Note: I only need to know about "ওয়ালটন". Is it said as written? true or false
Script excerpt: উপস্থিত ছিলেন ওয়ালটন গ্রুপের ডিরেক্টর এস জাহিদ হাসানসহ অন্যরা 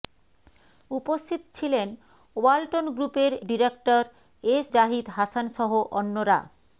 true